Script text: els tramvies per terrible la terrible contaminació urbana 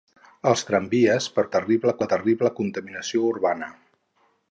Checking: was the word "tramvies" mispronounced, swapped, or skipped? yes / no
no